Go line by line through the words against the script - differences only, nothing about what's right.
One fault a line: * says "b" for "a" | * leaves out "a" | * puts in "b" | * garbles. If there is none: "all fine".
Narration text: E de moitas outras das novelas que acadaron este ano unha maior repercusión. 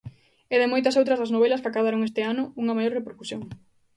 all fine